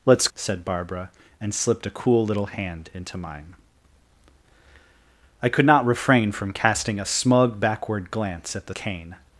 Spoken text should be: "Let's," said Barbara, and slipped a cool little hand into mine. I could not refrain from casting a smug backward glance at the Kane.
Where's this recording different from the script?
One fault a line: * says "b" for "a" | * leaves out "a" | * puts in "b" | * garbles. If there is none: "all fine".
all fine